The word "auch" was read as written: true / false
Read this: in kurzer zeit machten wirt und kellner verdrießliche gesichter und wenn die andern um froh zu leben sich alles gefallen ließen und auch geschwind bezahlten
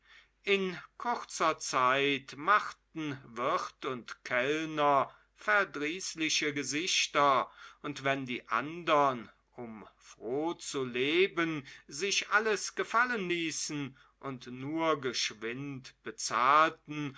false